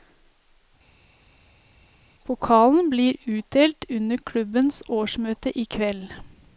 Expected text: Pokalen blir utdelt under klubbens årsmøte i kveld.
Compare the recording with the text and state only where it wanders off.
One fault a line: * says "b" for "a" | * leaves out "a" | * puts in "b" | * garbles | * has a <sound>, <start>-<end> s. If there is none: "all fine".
all fine